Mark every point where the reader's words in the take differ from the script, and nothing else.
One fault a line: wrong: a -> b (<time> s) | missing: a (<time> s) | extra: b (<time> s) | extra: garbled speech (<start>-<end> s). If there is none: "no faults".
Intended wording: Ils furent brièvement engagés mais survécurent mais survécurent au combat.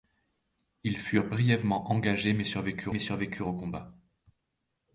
no faults